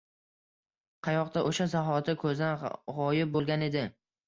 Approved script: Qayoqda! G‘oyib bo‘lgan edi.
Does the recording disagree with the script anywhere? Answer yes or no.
yes